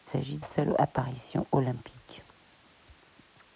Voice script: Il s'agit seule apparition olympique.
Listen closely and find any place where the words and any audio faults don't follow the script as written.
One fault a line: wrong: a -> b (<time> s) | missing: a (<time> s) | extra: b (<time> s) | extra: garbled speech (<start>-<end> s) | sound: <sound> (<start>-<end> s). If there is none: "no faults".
no faults